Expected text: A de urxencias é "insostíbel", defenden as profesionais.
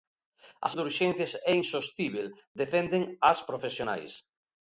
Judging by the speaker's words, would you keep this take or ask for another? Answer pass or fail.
pass